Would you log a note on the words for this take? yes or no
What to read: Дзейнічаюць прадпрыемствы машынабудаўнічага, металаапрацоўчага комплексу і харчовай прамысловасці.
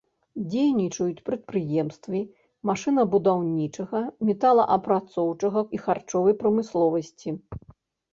yes